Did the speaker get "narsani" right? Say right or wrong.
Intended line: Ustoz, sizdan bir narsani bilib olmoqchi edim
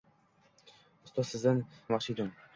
wrong